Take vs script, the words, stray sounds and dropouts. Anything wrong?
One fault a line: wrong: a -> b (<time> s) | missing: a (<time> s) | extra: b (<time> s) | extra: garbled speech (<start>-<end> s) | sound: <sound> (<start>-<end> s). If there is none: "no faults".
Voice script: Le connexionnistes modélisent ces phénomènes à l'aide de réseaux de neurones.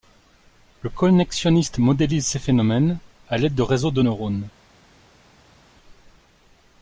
no faults